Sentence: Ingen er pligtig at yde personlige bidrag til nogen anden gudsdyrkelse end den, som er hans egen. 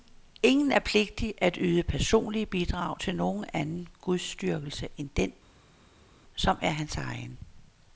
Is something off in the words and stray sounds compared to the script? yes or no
no